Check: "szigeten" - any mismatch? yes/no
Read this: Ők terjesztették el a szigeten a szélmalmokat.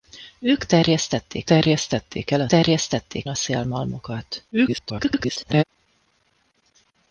yes